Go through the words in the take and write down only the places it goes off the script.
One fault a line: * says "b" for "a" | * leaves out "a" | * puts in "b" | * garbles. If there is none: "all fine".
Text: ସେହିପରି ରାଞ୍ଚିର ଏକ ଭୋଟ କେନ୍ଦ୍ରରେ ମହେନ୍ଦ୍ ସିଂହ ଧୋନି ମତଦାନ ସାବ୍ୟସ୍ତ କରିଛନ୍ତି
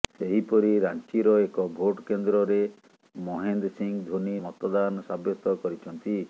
all fine